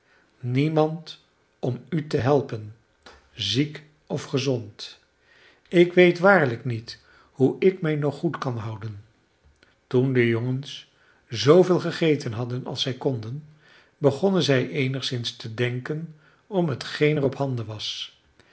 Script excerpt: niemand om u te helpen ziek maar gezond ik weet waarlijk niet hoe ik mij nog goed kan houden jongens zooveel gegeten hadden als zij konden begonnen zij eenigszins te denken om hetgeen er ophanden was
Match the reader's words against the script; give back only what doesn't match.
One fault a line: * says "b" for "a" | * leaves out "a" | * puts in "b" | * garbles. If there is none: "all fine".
* says "of" for "maar"
* puts in "toen de"